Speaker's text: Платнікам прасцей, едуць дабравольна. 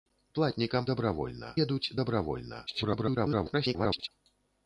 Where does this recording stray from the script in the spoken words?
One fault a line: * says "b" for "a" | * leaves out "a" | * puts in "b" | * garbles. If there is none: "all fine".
* says "дабравольна" for "прасцей"
* garbles